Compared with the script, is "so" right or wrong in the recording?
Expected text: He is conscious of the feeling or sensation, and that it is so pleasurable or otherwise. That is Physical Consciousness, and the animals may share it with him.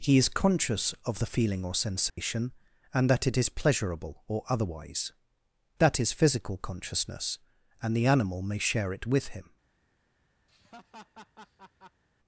wrong